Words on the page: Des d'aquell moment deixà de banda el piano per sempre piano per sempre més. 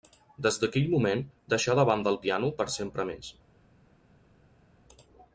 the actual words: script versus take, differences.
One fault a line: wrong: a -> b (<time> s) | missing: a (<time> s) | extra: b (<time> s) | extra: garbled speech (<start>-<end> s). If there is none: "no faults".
missing: piano per sempre (3.1 s)